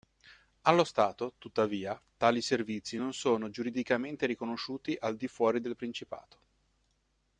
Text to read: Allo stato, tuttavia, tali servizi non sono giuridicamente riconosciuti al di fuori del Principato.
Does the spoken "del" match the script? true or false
true